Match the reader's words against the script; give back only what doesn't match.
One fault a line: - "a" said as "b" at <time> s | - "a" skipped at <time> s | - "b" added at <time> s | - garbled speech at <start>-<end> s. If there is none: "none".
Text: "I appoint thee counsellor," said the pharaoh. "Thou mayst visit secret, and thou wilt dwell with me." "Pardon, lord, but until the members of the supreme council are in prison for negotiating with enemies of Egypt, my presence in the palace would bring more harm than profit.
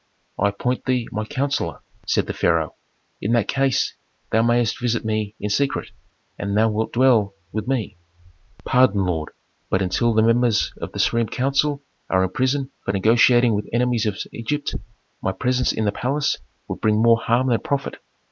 - "my" added at 1.1 s
- "In that case" added at 3.2 s
- "me in" added at 5.0 s